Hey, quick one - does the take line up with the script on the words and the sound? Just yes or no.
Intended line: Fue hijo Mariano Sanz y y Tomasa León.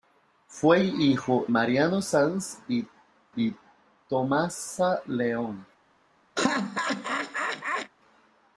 no